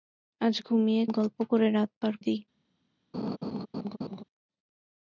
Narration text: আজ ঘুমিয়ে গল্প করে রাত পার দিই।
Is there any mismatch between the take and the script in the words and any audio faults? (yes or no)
yes